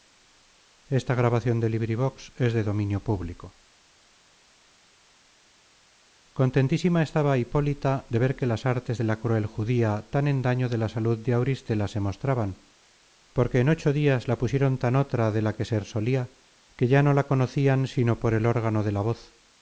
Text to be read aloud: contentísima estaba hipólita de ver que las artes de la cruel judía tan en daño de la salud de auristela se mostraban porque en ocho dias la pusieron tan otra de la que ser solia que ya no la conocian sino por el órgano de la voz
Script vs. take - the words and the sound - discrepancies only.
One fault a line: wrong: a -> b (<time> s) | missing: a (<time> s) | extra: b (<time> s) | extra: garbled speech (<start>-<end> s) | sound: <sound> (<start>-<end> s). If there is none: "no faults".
no faults